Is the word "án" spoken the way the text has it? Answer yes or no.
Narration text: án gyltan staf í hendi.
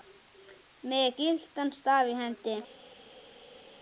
no